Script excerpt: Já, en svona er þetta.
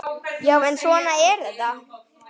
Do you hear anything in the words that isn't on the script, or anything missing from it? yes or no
no